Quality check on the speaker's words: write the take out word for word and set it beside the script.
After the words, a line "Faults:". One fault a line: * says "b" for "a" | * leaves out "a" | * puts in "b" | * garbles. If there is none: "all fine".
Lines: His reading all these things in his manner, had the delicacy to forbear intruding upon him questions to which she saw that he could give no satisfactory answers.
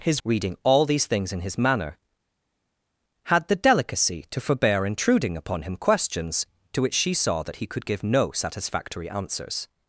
His reading all these things in his manner, had the delicacy to forbear intruding upon him questions to which she saw that he could give no satisfactory answers.
Faults:
all fine